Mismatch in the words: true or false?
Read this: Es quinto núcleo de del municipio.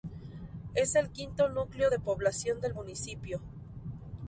true